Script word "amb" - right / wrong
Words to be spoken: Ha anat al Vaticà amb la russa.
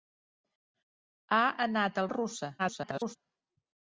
wrong